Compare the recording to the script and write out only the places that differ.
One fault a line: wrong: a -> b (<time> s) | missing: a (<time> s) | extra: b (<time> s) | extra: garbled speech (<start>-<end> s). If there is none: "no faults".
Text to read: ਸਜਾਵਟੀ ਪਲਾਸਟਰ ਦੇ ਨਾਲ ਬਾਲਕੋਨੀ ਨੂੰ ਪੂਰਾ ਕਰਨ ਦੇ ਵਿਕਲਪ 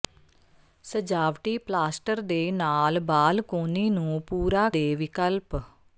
missing: ਕਰਨ (4.7 s)